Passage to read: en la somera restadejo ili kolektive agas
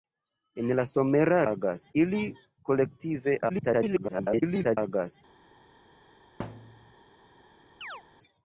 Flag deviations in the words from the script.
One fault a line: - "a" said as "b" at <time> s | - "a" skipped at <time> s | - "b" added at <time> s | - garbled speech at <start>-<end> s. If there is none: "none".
- "restadejo" said as "agas" at 1.5 s
- garbled speech at 3.5-4.8 s